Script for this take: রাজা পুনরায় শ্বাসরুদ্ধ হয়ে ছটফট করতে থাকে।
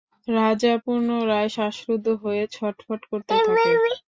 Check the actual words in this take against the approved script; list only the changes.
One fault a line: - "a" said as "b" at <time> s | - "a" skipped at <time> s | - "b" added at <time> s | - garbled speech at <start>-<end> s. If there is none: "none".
none